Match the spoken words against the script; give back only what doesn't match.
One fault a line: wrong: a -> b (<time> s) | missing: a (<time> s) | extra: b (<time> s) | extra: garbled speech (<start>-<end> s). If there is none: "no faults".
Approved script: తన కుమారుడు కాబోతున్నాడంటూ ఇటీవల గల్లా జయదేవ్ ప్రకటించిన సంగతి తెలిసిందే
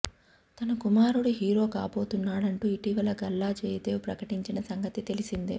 extra: హీరో (1.3 s)